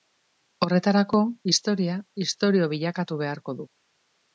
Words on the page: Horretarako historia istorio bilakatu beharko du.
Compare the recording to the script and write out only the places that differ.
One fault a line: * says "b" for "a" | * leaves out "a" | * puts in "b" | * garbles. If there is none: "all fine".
all fine